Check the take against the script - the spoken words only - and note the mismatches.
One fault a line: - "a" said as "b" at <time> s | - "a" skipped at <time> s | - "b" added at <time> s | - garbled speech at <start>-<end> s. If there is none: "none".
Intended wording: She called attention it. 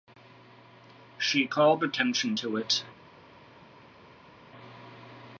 - "to" added at 2.3 s